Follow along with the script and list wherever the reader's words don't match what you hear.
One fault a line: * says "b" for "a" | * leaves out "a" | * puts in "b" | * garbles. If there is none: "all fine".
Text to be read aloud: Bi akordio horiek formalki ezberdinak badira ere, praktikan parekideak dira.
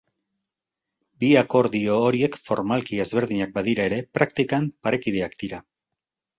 all fine